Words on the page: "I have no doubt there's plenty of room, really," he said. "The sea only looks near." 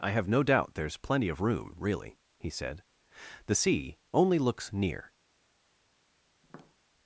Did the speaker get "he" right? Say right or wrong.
right